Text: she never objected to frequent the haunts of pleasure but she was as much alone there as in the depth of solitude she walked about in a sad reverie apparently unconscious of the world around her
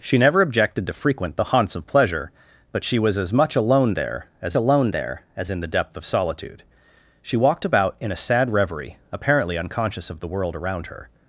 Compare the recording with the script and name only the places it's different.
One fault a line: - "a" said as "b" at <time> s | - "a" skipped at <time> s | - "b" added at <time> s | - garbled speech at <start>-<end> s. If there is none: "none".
- "alone there as" added at 4.5 s